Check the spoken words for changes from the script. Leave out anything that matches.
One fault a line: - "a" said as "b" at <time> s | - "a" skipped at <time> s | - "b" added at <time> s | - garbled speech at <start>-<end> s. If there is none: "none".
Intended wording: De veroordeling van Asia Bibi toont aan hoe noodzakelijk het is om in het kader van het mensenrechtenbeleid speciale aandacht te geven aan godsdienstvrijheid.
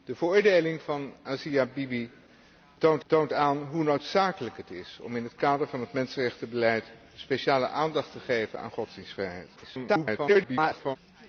- "toont" added at 3.1 s
- garbled speech at 9.6-11.0 s